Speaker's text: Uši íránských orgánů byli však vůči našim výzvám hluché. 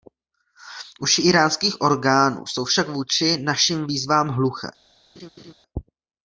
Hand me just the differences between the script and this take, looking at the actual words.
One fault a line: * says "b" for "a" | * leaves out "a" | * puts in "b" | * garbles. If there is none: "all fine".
* says "jsou" for "byli"